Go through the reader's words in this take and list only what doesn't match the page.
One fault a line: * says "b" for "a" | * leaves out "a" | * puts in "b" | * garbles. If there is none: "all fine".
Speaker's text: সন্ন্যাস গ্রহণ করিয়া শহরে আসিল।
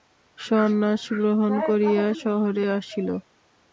all fine